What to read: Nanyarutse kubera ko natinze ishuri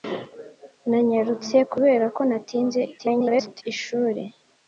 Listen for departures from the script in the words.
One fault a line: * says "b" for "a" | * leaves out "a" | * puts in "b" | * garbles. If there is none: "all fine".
* garbles